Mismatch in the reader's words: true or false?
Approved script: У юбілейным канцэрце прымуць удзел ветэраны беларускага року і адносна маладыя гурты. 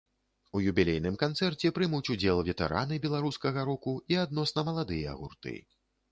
false